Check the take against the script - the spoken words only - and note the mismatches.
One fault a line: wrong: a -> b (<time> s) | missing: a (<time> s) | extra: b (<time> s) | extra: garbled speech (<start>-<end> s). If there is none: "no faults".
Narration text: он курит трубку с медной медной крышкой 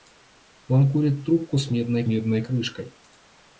no faults